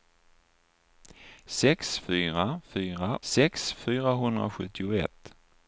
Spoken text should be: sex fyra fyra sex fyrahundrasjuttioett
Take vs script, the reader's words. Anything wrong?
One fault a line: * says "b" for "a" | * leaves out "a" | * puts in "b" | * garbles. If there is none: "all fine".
all fine